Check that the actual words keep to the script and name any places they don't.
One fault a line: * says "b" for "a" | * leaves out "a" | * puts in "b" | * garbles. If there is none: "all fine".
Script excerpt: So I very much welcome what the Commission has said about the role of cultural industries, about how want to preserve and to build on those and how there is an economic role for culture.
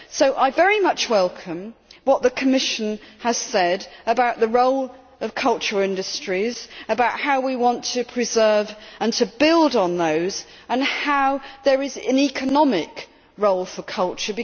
* puts in "we"